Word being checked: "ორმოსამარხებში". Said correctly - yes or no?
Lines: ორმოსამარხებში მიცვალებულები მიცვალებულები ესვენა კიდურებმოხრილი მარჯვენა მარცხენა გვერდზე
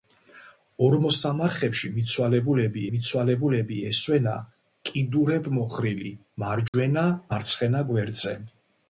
yes